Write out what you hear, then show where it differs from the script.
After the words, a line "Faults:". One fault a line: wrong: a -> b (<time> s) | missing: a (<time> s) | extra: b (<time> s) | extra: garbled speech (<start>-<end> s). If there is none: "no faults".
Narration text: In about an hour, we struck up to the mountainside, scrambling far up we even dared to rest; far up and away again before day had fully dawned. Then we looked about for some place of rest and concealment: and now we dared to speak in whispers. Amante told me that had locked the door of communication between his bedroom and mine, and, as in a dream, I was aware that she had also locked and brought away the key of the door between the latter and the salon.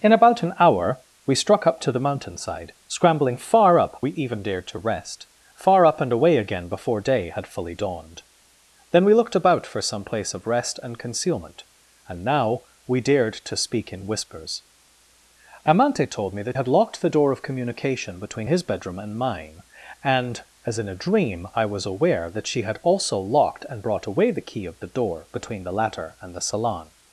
In about an hour, we struck up to the mountainside, scrambling far up we even dared to rest; far up and away again before day had fully dawned. Then we looked about for some place of rest and concealment: and now we dared to speak in whispers. Amante told me that had locked the door of communication between his bedroom and mine, and, as in a dream, I was aware that she had also locked and brought away the key of the door between the latter and the salon.
Faults:
no faults